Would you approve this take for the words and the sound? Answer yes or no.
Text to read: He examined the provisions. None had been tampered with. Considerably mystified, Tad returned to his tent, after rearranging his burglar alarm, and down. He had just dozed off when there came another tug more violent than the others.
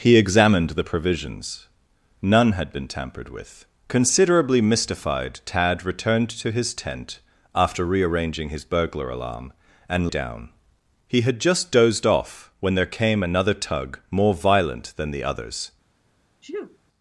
no